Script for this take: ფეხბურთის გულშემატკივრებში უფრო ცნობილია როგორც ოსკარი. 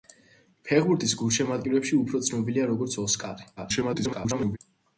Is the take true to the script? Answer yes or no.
no